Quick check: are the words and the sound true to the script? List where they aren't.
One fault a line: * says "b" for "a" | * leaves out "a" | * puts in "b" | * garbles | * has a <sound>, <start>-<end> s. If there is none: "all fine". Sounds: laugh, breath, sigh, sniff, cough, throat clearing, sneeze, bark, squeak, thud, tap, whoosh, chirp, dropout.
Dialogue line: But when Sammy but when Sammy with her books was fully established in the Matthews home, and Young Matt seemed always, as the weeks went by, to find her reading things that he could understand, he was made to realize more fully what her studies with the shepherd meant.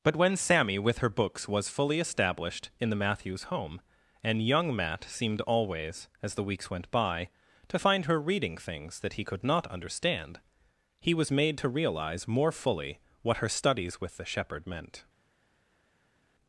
* leaves out "but when Sammy"
* puts in "not"